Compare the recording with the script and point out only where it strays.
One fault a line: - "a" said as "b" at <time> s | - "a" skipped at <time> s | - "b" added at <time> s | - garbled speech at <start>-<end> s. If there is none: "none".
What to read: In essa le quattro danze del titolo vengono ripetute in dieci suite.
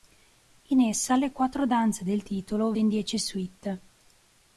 - "vengono ripetute" skipped at 2.7 s